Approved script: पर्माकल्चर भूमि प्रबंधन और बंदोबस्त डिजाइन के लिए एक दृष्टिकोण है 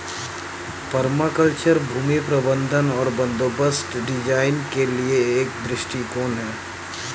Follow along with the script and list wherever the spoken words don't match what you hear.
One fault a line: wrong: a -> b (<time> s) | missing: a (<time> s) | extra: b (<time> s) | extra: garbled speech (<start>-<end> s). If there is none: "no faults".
no faults